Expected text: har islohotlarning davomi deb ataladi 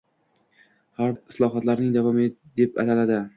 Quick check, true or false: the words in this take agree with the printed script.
true